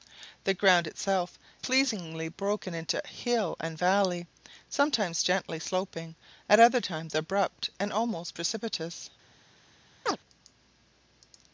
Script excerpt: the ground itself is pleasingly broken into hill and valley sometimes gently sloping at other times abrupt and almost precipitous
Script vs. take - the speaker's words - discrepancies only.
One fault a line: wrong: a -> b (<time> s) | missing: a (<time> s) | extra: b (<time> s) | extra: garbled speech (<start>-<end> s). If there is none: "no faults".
missing: is (1.4 s)